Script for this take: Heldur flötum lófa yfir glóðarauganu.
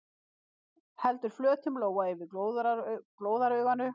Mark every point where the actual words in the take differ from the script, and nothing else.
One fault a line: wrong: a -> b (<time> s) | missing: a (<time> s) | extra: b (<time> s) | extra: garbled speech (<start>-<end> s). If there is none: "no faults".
no faults